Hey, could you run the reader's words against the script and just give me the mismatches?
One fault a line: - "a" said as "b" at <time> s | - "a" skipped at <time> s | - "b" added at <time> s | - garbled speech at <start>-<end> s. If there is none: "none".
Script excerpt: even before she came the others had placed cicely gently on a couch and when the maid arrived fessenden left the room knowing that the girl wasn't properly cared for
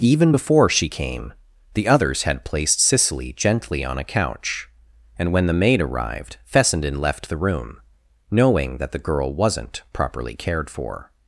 none